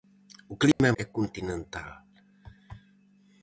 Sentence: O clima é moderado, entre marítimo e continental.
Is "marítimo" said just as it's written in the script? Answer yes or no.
no